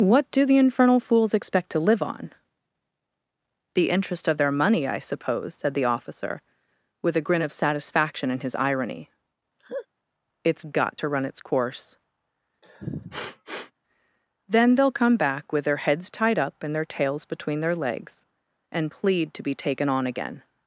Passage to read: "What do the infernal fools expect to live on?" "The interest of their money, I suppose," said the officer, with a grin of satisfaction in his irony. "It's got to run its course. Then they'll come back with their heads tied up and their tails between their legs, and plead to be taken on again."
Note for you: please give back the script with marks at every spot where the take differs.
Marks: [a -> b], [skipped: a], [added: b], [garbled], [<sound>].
"What do the infernal fools expect to live on?" "The interest of their money, I suppose," said the officer, with a grin of satisfaction in his irony. [laugh] "It's got to run its course. [sniff] Then they'll come back with their heads tied up and their tails between their legs, and plead to be taken on again."